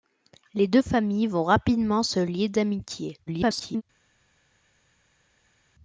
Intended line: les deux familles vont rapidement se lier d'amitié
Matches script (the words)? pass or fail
fail